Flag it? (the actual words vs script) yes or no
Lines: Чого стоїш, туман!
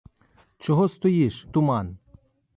no